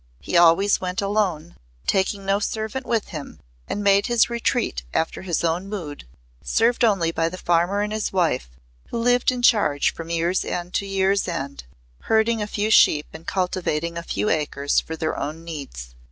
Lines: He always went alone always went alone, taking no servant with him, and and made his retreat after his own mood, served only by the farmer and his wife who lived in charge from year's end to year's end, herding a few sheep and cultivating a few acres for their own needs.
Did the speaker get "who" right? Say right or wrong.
right